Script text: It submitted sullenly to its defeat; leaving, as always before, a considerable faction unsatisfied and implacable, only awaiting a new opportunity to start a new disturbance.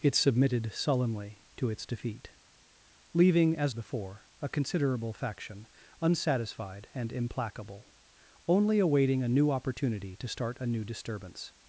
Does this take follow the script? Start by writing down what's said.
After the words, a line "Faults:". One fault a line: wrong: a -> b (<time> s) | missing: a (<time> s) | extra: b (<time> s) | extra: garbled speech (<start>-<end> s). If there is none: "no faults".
It submitted sullenly to its defeat; leaving, as before, a considerable faction unsatisfied and implacable, only awaiting a new opportunity to start a new disturbance.
Faults:
missing: always (3.7 s)